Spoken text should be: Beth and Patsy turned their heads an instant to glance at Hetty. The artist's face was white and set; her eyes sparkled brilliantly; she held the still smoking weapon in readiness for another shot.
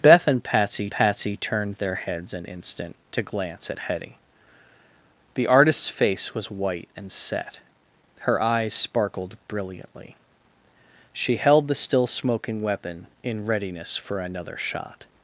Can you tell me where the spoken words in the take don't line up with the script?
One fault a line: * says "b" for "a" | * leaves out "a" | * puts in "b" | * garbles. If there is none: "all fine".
* puts in "Patsy"